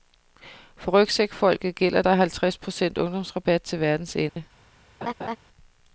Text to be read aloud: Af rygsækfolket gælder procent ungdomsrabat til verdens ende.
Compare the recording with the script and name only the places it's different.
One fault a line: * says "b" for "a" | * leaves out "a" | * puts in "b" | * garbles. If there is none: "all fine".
* says "For" for "Af"
* puts in "der halvtreds"